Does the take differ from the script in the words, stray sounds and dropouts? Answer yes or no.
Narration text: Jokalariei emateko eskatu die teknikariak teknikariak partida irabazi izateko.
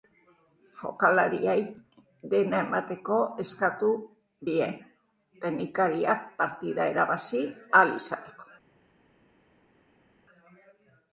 yes